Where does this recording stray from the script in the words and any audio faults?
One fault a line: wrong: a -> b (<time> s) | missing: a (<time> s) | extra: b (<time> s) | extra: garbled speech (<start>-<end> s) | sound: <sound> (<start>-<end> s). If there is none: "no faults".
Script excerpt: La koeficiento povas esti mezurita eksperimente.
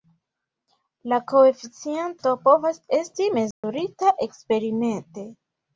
sound: dropout (3.5-3.6 s)